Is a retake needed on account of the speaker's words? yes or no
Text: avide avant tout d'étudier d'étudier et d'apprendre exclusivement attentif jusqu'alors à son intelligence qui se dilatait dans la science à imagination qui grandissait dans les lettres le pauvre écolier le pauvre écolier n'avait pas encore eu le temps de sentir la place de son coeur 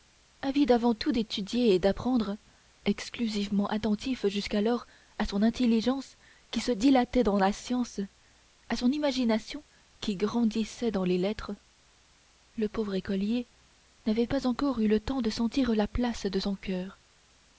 yes